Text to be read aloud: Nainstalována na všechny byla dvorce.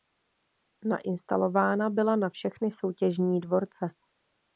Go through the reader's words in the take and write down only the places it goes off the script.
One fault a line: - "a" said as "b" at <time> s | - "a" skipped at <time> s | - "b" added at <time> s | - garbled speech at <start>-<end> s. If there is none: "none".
- "byla" added at 1.9 s
- "byla" said as "soutěžní" at 2.7 s